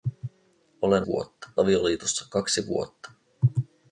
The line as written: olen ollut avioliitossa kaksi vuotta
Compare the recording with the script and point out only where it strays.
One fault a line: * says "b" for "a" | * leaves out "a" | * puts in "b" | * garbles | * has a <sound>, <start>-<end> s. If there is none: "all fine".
* says "vuotta" for "ollut"